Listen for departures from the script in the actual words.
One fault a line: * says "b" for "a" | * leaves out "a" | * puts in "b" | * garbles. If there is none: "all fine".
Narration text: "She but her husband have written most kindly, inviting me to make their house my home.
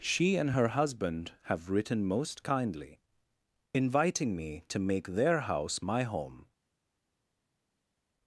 * says "and" for "but"